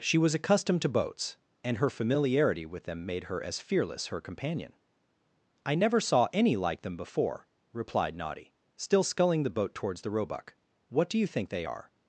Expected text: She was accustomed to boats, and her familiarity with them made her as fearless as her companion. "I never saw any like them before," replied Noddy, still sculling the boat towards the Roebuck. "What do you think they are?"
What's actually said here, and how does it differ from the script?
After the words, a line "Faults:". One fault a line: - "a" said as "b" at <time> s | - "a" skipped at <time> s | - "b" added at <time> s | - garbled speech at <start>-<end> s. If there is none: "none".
She was accustomed to boats, and her familiarity with them made her as fearless her companion. "I never saw any like them before," replied Noddy, still sculling the boat towards the Roebuck. "What do you think they are?"
Faults:
- "as" skipped at 4.1 s